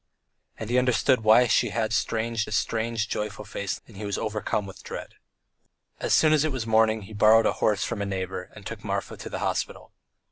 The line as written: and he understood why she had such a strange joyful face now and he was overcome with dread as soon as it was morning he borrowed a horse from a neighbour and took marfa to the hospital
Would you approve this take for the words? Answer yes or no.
no